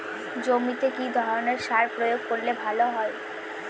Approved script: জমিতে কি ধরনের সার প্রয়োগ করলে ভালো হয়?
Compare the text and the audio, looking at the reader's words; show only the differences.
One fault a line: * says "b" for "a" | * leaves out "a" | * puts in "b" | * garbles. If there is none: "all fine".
all fine